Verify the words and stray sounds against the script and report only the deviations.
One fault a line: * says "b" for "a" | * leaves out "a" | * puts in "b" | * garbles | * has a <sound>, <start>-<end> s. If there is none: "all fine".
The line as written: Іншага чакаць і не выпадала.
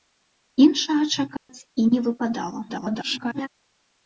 * has a dropout, 1.4-1.5 s
* garbles